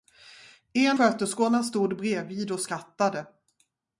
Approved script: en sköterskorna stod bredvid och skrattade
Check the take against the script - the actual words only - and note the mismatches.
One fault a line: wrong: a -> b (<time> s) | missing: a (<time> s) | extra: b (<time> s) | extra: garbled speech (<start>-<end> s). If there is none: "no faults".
no faults